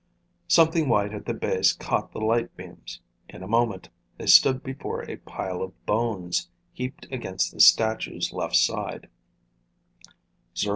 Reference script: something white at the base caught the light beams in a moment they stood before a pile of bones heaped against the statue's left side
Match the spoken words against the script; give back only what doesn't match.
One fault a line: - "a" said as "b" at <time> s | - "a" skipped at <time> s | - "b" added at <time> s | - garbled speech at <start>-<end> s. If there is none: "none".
none